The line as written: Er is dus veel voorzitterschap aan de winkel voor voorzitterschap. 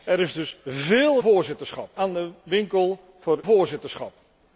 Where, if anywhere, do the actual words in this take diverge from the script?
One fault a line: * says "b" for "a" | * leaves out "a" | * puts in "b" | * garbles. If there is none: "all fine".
all fine